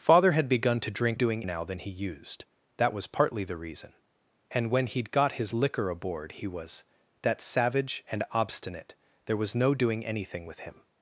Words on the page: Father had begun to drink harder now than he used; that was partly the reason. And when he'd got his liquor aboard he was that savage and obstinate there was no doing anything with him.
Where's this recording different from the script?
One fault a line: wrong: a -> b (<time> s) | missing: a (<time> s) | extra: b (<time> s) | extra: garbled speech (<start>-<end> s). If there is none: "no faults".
wrong: harder -> doing (1.1 s)